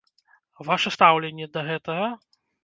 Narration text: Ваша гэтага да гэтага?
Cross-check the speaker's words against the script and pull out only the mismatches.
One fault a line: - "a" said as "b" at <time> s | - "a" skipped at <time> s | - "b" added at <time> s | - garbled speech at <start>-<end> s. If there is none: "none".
- "гэтага" said as "стаўленне" at 0.9 s